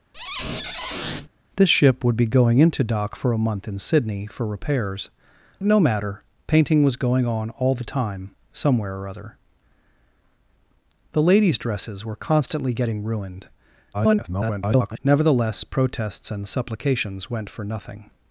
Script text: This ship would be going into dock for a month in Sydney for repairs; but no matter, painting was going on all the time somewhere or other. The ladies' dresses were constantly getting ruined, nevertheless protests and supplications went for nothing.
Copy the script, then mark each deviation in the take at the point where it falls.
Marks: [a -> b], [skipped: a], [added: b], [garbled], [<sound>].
[squeak] This ship would be going into dock for a month in Sydney for repairs; [skipped: but] no matter, painting was going on all the time somewhere or other. The ladies' dresses were constantly getting ruined, [garbled] nevertheless protests and supplications went for nothing.